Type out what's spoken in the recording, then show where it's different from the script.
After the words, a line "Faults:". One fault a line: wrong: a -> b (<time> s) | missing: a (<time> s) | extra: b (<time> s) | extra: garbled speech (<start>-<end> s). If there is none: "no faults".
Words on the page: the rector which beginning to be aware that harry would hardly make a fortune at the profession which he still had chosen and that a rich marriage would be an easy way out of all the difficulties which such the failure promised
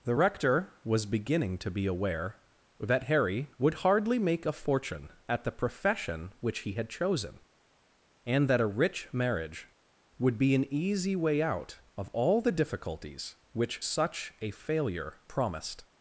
the rector was beginning to be aware that harry would hardly make a fortune at the profession which he had chosen and that a rich marriage would be an easy way out of all the difficulties which such a failure promised
Faults:
wrong: which -> was (0.9 s)
missing: still (6.7 s)
wrong: the -> a (14.4 s)